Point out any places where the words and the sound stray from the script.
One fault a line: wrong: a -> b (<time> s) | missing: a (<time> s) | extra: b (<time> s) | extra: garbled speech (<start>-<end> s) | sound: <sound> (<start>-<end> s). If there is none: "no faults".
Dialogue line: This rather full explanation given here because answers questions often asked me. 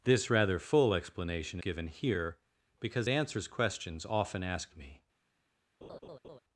sound: laugh (5.8-6.4 s)